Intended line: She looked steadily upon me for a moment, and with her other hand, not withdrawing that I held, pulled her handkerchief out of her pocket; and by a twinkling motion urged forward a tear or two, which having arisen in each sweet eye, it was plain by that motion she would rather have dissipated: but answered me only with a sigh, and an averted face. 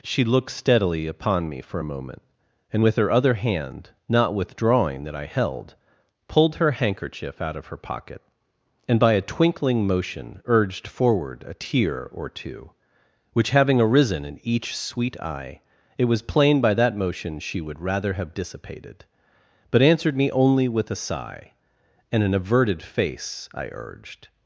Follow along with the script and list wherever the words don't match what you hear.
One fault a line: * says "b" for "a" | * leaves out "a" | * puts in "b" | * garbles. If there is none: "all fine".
* puts in "I urged"